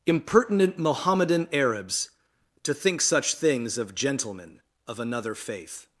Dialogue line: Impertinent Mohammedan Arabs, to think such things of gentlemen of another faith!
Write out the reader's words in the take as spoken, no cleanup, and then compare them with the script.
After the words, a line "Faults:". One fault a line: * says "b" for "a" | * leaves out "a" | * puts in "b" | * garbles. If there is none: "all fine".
Impertinent Mohammedan Arabs, to think such things of gentlemen of another faith!
Faults:
all fine